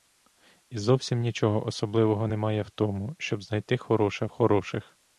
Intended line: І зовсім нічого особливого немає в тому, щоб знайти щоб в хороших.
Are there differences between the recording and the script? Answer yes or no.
yes